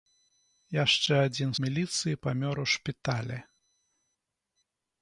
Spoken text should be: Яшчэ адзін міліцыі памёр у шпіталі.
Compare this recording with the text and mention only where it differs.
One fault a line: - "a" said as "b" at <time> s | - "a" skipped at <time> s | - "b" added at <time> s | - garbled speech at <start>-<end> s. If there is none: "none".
none